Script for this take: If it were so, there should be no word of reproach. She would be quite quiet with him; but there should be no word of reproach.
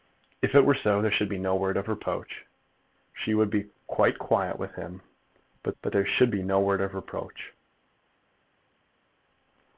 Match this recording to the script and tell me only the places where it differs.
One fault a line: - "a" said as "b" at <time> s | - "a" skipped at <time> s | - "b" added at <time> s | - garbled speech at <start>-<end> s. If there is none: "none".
- "but" added at 5.8 s